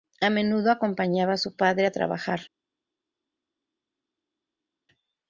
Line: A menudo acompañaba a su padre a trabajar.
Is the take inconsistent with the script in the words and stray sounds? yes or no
no